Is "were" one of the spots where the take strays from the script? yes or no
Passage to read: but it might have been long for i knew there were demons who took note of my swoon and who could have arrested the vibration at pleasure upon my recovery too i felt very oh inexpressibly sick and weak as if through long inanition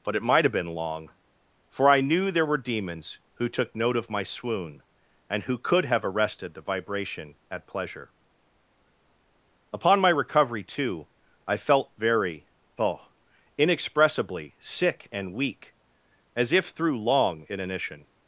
no